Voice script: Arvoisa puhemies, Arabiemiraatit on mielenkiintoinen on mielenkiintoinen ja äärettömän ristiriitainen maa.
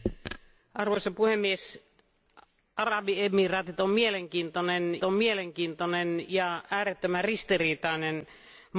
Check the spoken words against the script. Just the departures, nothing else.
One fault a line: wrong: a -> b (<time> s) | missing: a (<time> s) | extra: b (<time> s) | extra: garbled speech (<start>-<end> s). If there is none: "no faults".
no faults